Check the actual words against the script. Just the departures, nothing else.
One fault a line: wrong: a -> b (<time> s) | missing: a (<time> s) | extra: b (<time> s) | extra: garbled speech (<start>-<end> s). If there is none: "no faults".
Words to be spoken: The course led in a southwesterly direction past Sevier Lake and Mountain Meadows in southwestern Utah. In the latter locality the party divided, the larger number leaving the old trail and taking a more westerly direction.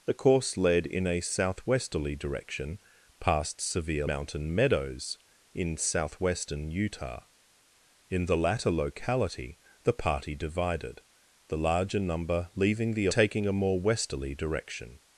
missing: Lake and (4.1 s)
missing: old trail and (13.1 s)